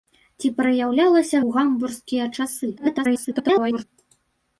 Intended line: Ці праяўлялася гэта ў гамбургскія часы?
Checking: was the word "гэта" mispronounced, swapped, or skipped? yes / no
yes